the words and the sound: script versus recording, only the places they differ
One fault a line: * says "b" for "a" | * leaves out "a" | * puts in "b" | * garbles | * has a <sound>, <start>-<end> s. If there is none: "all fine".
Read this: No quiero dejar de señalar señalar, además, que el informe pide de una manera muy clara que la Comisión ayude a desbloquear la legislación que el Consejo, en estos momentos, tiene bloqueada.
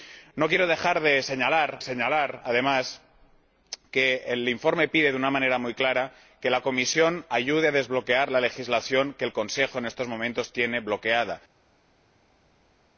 all fine